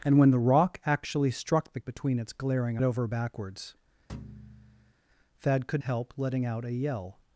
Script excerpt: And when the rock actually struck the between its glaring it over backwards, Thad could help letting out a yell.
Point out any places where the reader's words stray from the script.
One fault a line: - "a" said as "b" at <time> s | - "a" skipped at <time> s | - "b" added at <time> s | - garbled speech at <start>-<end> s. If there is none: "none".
none